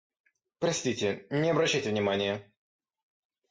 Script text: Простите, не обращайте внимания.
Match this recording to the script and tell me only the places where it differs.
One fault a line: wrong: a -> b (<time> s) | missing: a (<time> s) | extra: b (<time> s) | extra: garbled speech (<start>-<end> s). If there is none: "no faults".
no faults